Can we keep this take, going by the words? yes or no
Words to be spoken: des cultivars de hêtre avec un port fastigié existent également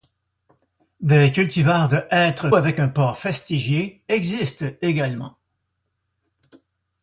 yes